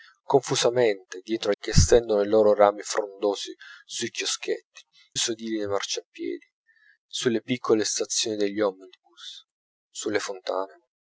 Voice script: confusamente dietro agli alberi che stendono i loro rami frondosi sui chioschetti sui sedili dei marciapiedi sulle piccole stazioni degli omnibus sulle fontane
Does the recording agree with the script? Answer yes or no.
no